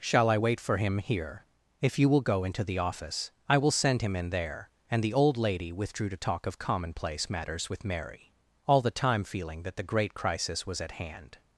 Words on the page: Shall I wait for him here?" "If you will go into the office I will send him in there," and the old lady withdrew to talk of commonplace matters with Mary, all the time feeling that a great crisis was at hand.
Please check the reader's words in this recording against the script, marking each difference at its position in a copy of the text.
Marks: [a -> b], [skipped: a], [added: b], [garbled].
Shall I wait for him here?" "If you will go into the office I will send him in there," and the old lady withdrew to talk of commonplace matters with Mary, all the time feeling that [a -> the] great crisis was at hand.